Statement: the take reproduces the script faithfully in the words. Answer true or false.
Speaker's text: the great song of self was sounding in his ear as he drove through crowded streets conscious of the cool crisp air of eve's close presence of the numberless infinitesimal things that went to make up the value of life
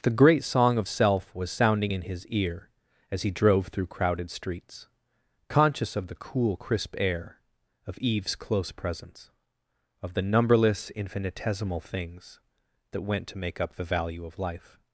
true